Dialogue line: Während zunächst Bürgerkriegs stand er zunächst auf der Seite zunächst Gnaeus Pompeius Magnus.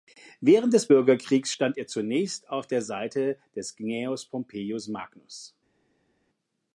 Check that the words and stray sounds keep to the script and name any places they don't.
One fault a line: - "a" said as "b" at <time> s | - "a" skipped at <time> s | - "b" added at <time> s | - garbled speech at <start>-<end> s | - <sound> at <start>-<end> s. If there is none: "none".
- "zunächst" said as "des" at 0.7 s
- "zunächst" said as "des" at 3.5 s